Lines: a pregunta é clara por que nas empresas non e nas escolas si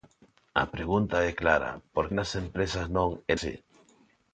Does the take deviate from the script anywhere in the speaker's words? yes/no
yes